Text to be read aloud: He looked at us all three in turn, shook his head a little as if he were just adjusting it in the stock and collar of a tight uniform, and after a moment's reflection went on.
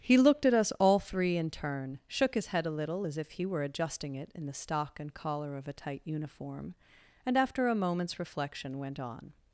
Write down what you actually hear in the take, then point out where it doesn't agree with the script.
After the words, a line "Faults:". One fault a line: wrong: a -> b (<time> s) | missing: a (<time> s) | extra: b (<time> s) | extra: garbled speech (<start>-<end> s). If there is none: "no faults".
He looked at us all three in turn, shook his head a little as if he were adjusting it in the stock and collar of a tight uniform, and after a moment's reflection went on.
Faults:
missing: just (3.6 s)